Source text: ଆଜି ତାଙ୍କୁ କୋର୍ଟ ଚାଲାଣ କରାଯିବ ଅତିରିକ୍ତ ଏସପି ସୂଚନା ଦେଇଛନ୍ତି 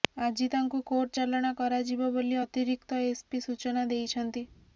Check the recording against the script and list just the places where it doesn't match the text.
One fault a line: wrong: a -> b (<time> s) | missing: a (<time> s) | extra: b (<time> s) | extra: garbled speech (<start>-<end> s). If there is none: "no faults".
extra: ବୋଲି (2.1 s)